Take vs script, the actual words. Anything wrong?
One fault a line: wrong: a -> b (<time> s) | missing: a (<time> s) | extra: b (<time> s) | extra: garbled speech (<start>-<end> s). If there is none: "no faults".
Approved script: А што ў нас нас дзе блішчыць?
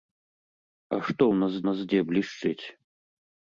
no faults